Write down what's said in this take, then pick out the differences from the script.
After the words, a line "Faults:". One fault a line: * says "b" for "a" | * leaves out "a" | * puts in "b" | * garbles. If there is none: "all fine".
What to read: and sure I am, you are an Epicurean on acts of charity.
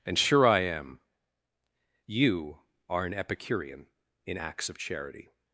and sure I am, you are an Epicurean in acts of charity.
Faults:
* says "in" for "on"